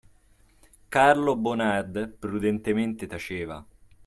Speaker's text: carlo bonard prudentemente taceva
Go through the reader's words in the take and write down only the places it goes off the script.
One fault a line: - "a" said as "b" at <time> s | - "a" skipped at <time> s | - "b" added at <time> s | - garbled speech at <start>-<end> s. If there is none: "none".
none